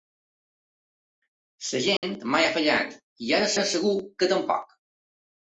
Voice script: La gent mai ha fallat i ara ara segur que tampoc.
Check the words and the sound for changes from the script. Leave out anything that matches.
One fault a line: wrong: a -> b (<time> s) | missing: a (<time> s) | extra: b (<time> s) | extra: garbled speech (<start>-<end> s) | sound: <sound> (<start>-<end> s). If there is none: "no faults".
sound: dropout (2.0-2.0 s)